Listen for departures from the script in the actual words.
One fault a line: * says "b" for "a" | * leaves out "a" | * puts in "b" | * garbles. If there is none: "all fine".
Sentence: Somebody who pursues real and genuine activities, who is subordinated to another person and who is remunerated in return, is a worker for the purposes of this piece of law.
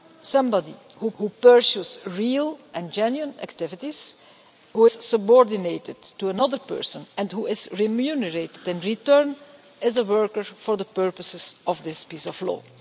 * puts in "who"
* leaves out "is"